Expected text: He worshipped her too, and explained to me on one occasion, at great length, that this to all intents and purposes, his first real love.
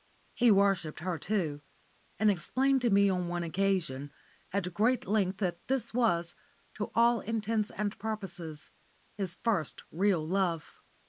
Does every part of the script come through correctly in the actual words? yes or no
no